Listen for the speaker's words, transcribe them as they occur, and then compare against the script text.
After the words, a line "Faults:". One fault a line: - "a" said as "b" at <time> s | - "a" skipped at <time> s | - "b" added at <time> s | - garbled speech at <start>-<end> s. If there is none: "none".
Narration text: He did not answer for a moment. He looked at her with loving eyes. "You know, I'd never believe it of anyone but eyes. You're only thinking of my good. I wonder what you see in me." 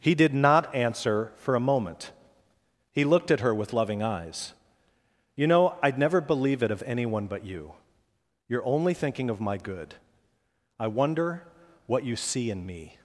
He did not answer for a moment. He looked at her with loving eyes. "You know, I'd never believe it of anyone but you. You're only thinking of my good. I wonder what you see in me."
Faults:
- "eyes" said as "you" at 7.5 s